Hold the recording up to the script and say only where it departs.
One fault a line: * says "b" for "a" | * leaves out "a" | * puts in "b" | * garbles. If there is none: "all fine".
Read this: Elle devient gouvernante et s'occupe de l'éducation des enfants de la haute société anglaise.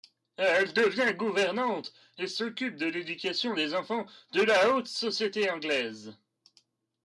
all fine